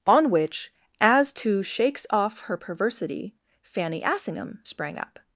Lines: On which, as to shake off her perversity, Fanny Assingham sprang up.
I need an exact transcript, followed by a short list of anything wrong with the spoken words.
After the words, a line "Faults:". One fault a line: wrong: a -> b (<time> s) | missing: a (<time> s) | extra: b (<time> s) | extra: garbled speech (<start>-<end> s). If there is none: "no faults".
On which, as to shakes off her perversity, Fanny Assingham sprang up.
Faults:
wrong: shake -> shakes (1.6 s)